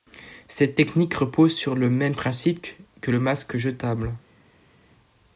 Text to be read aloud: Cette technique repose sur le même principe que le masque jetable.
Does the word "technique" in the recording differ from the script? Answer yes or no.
no